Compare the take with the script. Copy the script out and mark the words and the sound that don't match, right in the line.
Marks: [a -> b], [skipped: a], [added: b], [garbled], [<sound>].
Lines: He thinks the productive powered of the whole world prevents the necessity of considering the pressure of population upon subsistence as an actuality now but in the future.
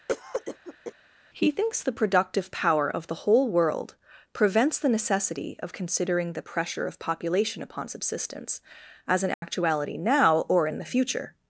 [cough] He thinks the productive [powered -> power] of the whole world prevents the necessity of considering the pressure of population upon subsistence as an actuality [dropout] now [but -> or] in the future.